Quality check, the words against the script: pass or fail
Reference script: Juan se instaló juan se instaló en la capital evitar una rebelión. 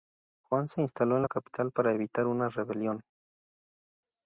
fail